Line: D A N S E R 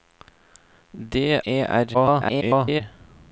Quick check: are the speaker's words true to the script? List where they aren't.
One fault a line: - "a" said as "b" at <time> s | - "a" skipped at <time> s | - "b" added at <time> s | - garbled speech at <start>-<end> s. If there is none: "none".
- "A N S" skipped at 1.4 s
- garbled speech at 1.9-2.8 s